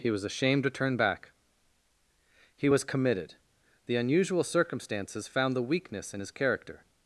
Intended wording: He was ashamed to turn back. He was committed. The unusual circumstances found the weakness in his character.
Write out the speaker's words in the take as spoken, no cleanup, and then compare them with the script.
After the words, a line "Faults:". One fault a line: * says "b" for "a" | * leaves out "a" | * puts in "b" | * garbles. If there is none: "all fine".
He was ashamed to turn back. He was committed. The unusual circumstances found the weakness in his character.
Faults:
all fine